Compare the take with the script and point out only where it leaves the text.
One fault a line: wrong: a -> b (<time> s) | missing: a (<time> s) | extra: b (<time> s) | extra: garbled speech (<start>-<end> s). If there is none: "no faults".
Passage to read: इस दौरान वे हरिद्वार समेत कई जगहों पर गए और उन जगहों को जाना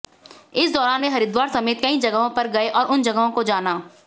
no faults